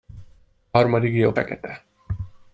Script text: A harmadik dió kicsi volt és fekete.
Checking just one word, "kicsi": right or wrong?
wrong